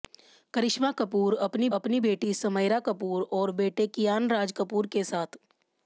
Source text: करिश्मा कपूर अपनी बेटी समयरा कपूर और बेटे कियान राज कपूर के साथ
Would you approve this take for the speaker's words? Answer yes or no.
no